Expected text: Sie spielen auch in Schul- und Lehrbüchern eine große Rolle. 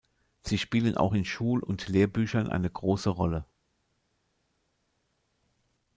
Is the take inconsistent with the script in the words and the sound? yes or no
no